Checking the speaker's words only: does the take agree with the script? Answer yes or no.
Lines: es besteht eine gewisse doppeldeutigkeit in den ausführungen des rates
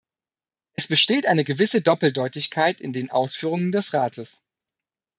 yes